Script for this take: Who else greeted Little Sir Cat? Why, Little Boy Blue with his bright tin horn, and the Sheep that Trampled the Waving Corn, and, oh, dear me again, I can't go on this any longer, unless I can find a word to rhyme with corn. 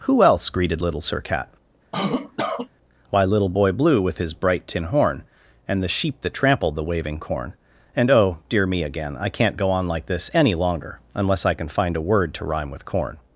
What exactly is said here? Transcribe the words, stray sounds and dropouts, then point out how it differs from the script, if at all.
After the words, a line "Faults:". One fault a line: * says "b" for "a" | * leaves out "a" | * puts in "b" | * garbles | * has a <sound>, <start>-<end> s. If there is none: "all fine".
Who else greeted Little Sir Cat? Why, Little Boy Blue with his bright tin horn, and the Sheep that Trampled the Waving Corn, and, oh, dear me again, I can't go on like this any longer, unless I can find a word to rhyme with corn.
Faults:
* has a cough, 1.9-2.7 s
* puts in "like"